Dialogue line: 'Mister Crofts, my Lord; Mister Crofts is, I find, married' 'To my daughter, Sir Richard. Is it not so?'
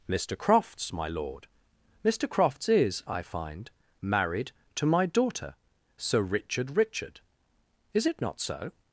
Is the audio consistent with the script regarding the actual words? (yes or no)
no